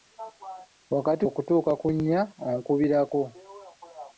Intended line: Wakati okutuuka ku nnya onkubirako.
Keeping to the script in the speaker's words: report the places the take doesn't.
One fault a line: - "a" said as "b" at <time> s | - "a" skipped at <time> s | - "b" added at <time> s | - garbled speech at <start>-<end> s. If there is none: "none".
none